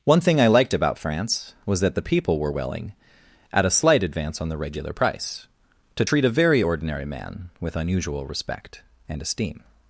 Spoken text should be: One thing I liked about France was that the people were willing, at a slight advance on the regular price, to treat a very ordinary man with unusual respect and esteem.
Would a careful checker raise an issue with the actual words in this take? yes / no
no